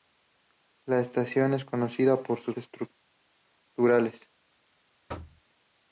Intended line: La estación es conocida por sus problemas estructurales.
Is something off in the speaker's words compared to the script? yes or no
yes